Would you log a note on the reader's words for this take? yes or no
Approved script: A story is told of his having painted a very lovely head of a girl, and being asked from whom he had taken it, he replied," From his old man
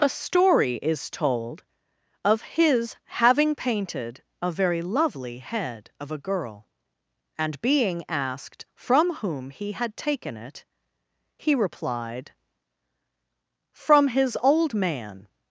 no